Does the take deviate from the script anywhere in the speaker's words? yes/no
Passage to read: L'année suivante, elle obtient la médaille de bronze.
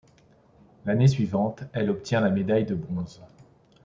no